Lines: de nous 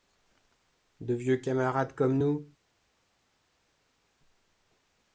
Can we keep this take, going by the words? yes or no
no